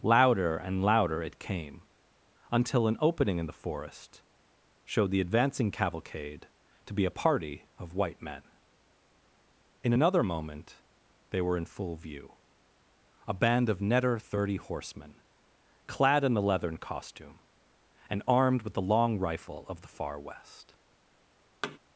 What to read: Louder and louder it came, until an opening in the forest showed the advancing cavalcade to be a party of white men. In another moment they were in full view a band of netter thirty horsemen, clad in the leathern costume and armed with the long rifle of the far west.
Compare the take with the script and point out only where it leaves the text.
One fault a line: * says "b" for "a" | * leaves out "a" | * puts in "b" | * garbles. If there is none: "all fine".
all fine